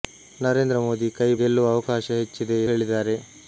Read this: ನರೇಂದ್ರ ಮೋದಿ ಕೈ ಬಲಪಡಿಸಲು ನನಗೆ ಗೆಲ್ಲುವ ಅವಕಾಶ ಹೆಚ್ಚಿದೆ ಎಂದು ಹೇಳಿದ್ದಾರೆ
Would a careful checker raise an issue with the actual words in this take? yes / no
yes